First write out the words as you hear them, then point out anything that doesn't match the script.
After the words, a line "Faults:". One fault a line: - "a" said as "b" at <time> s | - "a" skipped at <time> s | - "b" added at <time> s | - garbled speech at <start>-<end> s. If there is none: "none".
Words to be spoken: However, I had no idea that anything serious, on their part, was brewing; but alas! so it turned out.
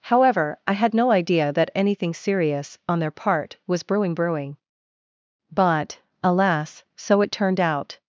However, I had no idea that anything serious, on their part, was brewing brewing; but alas! so it turned out.
Faults:
- "brewing" added at 4.2 s